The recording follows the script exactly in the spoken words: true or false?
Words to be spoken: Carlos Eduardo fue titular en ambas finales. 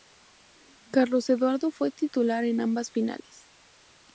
true